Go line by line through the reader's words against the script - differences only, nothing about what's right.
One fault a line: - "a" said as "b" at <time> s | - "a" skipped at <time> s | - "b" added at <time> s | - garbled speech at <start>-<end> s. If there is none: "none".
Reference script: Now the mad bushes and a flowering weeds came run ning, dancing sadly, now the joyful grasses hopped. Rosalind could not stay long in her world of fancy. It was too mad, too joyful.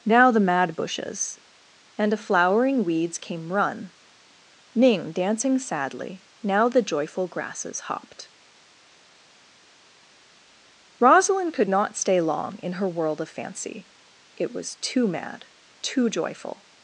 none